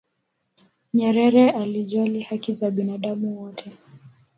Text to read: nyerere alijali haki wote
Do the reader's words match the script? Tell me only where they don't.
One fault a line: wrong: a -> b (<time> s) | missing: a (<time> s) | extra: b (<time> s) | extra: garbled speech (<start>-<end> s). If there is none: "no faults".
extra: za binadamu (2.5 s)